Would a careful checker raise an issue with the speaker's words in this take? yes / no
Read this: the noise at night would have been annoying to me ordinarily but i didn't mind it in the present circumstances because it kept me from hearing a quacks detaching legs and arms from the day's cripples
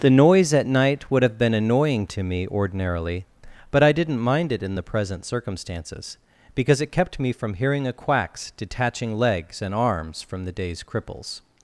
no